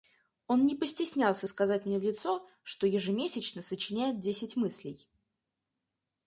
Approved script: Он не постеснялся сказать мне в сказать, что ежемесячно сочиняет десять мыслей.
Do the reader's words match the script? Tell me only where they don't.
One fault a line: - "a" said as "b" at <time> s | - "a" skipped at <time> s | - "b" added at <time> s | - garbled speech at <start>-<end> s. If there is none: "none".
- "сказать" said as "лицо" at 2.0 s